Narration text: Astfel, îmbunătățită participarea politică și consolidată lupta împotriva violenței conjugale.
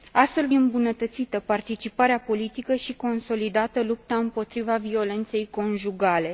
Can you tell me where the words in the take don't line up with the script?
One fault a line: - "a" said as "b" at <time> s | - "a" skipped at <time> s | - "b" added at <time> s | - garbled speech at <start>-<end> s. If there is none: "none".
none